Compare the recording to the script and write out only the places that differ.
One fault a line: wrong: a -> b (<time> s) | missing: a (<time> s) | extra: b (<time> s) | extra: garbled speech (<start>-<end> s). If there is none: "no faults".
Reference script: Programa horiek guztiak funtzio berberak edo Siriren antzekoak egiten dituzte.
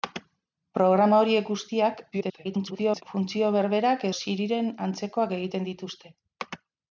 extra: garbled speech (2.1-3.0 s)
missing: edo (4.1 s)